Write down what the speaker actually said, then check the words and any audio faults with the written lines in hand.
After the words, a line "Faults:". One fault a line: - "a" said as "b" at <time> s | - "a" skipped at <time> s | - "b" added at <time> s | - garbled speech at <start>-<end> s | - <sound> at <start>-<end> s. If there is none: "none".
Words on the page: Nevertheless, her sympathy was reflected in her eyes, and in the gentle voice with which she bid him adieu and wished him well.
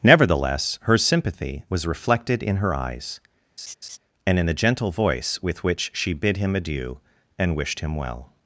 Nevertheless, her sympathy was reflected in her eyes, and in the gentle voice with which she bid him adieu and wished him well.
Faults:
- laugh at 3.6-4.0 s